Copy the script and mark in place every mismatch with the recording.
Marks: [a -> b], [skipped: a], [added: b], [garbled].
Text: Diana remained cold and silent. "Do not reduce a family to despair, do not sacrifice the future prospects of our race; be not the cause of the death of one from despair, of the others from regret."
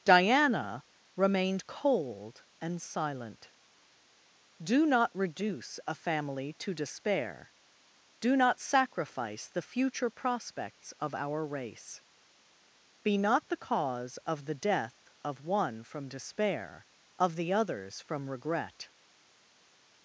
Diana remained cold and silent. "Do not reduce a family to despair, do not sacrifice the future prospects of our race; be not the cause of the death of one from despair, of the others from regret."